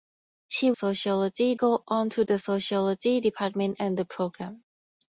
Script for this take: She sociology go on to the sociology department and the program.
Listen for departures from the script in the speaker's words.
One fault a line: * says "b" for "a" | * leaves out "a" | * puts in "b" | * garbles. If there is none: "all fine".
all fine